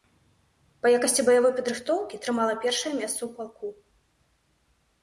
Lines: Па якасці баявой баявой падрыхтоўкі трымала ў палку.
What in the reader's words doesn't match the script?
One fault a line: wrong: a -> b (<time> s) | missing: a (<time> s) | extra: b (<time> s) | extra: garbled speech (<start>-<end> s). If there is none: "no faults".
missing: баявой (1.5 s)
extra: першае месца (2.6 s)